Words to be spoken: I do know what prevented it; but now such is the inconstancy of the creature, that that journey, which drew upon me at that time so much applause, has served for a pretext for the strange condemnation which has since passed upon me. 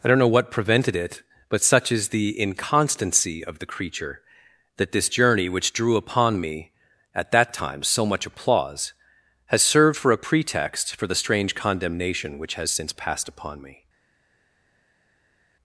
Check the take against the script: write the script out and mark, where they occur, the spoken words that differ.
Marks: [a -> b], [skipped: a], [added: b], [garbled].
I [do -> don't] know what prevented it; but [skipped: now] such is the inconstancy of the creature, that [that -> this] journey, which drew upon me at that time so much applause, has served for a pretext for the strange condemnation which has since passed upon me.